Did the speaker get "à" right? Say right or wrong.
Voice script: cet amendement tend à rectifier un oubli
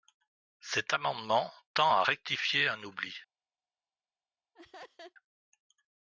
right